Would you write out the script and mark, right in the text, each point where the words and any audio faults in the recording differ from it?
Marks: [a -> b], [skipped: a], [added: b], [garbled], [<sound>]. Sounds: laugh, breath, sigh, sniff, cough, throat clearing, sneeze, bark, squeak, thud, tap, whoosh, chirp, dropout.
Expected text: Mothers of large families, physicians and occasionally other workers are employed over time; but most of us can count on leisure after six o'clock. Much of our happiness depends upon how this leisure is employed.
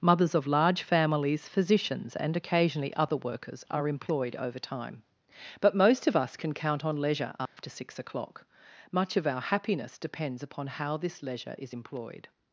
Mothers of large families, physicians and occasionally other workers are employed over time; but most of us can count on leisure after [dropout] six o'clock. Much of our happiness depends upon how this leisure is employed.